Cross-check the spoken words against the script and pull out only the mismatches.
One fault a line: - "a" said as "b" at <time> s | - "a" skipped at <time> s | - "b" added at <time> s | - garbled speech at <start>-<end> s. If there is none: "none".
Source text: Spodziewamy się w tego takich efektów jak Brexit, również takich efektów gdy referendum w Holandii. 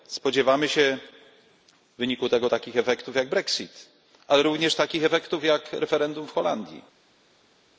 - "wyniku" added at 2.0 s
- "ale" added at 4.3 s
- "gdy" said as "jak" at 5.4 s